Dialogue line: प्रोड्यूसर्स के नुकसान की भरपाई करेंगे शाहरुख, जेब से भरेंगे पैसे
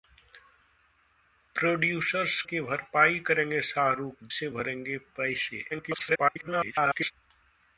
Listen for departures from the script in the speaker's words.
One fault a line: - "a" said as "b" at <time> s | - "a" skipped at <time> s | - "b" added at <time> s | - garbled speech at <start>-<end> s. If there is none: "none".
- "के नुकसान" skipped at 2.4 s
- "जेब" skipped at 4.2 s
- garbled speech at 5.7-7.1 s